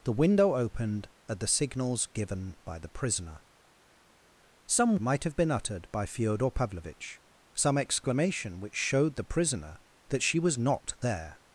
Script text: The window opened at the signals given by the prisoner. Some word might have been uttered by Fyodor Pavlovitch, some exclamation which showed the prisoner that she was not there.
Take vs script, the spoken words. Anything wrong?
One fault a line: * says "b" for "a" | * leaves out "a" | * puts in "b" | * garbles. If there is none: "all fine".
* leaves out "word"